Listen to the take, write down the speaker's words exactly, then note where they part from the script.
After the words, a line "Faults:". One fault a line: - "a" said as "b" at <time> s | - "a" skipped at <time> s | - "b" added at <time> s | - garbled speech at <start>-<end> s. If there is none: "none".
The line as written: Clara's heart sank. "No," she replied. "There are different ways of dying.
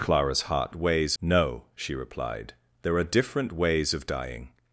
Clara's heart ways. "No," she replied. "There are different ways of dying.
Faults:
- "sank" said as "ways" at 0.7 s